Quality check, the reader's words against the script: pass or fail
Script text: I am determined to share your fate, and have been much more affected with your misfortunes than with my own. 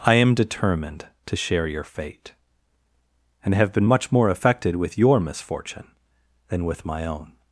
fail